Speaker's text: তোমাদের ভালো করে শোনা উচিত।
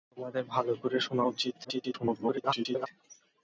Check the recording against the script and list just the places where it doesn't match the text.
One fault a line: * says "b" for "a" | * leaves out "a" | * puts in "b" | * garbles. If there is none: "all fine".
* garbles